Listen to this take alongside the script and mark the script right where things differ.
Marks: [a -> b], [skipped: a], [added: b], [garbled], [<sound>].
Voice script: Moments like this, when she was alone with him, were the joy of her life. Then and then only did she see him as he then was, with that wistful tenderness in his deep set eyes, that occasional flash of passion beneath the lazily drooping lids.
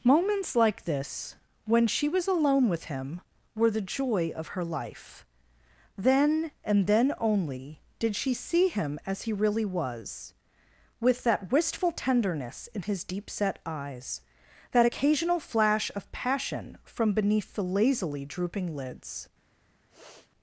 Moments like this, when she was alone with him, were the joy of her life. Then and then only did she see him as he [then -> really] was, with that wistful tenderness in his deep set eyes, that occasional flash of passion [added: from] beneath the lazily drooping lids. [sniff]